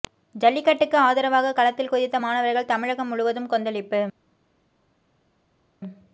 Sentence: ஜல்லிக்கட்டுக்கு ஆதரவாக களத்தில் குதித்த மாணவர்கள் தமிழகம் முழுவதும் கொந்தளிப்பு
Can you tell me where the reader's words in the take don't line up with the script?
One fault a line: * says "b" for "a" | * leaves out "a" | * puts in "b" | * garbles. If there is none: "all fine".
all fine